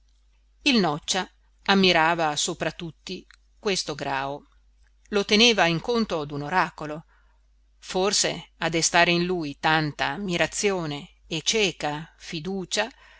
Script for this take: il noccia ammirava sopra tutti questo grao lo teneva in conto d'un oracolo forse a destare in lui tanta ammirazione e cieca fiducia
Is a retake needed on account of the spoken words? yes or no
no